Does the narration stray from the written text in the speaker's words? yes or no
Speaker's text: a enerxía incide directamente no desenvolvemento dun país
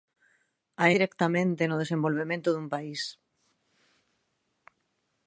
yes